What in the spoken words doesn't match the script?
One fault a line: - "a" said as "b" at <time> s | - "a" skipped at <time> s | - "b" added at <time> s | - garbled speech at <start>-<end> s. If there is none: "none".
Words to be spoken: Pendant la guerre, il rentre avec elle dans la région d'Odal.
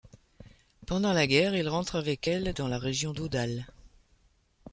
none